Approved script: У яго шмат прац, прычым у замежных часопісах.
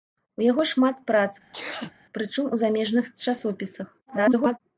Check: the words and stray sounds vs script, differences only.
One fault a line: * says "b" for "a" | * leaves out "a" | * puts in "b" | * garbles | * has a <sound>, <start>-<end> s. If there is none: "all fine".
* has a sneeze, 1.5-1.9 s
* garbles